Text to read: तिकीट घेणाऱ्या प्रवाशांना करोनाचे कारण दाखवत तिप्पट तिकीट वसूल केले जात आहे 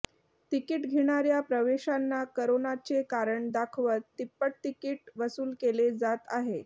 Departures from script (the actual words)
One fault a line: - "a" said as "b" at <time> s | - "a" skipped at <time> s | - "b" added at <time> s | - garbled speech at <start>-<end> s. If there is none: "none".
none